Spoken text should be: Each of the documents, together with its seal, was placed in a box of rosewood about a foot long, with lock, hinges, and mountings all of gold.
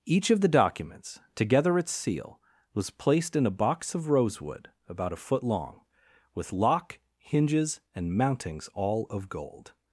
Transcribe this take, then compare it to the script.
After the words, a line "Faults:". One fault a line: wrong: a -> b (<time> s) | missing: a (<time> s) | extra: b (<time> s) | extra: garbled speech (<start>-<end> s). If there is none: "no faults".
Each of the documents, together its seal, was placed in a box of rosewood about a foot long, with lock, hinges, and mountings all of gold.
Faults:
missing: with (1.8 s)